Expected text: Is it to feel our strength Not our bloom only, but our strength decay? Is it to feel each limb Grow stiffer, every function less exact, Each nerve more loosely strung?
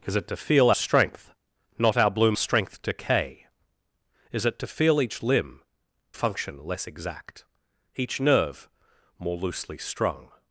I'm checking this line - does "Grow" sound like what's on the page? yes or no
no